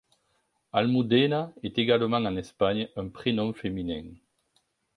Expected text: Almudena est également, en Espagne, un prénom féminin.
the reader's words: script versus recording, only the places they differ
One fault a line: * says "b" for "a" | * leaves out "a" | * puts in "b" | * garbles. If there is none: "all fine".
all fine